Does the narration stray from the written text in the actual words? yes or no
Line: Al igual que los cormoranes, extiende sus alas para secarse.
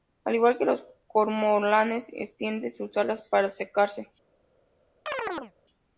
no